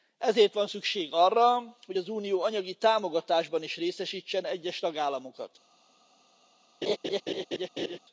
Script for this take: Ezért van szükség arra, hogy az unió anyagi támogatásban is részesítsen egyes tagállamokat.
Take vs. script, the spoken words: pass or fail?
pass